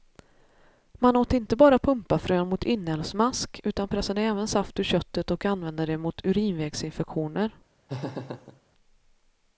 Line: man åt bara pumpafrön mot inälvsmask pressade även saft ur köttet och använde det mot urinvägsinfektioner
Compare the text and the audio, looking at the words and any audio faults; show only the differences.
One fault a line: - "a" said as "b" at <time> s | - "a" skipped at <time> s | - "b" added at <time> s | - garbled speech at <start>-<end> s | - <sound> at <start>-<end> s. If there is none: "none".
- "inte" added at 1.3 s
- "utan" added at 3.6 s
- laugh at 7.9-8.6 s